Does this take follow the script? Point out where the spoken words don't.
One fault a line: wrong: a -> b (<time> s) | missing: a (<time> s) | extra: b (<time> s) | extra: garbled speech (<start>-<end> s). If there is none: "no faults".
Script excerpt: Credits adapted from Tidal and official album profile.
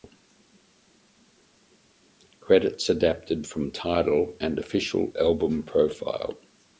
no faults